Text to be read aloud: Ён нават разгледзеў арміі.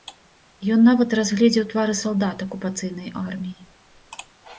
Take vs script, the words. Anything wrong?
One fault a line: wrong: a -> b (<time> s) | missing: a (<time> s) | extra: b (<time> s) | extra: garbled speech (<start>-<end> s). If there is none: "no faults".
extra: твары салдат акупацыйнай (1.7 s)